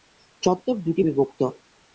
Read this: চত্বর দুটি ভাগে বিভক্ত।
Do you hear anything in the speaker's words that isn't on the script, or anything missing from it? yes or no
yes